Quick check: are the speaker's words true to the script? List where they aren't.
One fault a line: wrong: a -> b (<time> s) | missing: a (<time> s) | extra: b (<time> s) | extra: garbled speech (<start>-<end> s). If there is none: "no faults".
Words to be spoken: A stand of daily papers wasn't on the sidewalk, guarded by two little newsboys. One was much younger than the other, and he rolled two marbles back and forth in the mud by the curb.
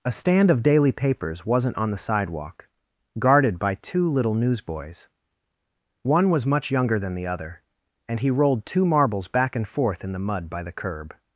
no faults